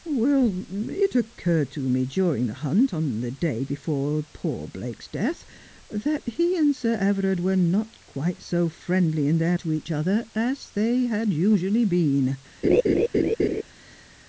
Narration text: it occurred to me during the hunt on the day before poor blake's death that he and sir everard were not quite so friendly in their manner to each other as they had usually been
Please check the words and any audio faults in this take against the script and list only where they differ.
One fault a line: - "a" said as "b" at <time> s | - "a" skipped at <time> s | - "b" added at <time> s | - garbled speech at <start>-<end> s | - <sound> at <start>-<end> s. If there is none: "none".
- "manner" skipped at 9.6 s
- laugh at 12.6-13.6 s